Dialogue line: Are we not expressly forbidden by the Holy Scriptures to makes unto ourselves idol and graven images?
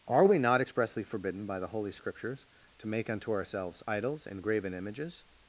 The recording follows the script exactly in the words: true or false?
false